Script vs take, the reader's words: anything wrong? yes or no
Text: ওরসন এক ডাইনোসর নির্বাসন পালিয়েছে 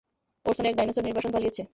no